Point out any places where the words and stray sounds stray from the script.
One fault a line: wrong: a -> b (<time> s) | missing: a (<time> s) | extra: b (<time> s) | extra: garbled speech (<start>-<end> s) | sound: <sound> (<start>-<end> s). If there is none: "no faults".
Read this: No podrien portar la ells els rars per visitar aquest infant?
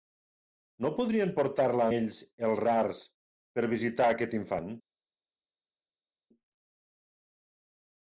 no faults